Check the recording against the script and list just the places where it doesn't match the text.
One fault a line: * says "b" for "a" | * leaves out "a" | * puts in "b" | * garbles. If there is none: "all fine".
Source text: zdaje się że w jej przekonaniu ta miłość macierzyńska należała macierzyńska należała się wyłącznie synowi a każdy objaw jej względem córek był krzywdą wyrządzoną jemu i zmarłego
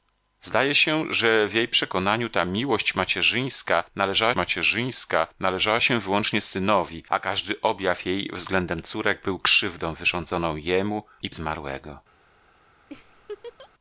all fine